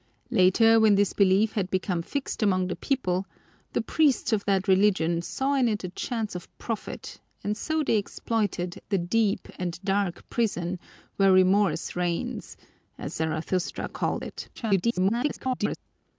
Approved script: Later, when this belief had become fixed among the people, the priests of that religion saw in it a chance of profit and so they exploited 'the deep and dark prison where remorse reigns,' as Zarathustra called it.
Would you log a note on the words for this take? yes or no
yes